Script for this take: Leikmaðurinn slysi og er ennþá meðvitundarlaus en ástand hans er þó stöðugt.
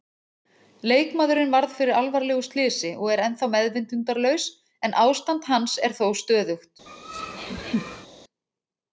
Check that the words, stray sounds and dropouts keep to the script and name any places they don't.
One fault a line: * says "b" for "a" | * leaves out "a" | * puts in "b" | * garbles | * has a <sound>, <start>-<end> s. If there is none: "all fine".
* puts in "varð fyrir alvarlegu"
* has a laugh, 6.9-8.1 s